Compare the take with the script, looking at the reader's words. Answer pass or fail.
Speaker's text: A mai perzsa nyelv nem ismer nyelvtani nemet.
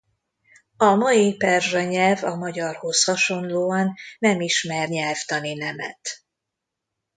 fail